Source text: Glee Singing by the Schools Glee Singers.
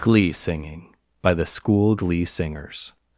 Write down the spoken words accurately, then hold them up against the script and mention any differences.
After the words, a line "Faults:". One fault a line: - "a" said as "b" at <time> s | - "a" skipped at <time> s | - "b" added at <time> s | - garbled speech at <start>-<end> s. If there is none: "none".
Glee Singing by the School Glee Singers.
Faults:
- "Schools" said as "School" at 1.4 s